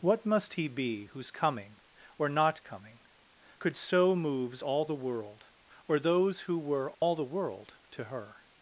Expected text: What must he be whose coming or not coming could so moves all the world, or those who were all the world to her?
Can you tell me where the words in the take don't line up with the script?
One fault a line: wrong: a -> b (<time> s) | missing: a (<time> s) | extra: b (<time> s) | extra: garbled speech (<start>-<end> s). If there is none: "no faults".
no faults